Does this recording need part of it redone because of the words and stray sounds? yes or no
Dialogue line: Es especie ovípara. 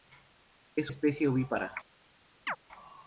yes